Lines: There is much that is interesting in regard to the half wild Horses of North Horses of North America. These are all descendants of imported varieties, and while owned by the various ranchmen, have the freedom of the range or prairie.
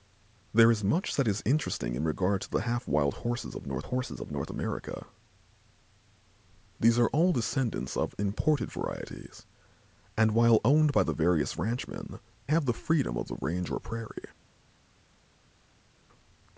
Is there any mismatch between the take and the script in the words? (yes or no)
no